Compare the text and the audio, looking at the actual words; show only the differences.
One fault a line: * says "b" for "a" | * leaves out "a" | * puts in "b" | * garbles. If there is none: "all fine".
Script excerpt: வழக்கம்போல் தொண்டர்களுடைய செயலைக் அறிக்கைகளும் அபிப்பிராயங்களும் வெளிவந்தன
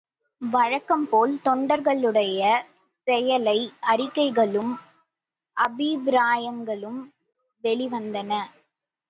all fine